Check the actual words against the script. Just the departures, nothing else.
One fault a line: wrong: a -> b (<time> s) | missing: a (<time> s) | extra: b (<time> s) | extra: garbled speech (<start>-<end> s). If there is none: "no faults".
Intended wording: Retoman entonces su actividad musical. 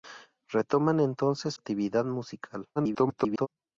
missing: su (1.5 s)
extra: garbled speech (2.8-3.5 s)